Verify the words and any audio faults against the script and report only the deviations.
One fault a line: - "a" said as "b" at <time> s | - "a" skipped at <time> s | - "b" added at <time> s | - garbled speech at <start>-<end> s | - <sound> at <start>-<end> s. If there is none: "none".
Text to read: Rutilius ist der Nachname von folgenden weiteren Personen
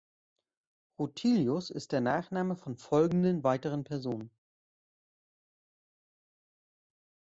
none